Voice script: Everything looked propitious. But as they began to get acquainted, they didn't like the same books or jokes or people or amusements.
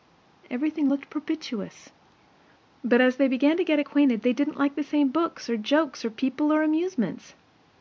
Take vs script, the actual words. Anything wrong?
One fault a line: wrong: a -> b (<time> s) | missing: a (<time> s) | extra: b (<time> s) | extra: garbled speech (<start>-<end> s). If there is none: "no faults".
no faults